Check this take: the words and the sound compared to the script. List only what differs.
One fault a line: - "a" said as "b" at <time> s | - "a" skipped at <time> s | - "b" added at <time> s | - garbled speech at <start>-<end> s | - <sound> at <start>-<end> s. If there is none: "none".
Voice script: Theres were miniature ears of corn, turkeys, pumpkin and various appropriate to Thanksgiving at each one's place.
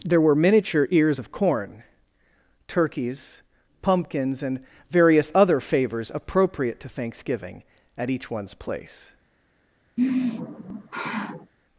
- "Theres" said as "There" at 0.0 s
- "pumpkin" said as "pumpkins" at 3.8 s
- "other favors" added at 5.3 s
- sigh at 10.0-11.5 s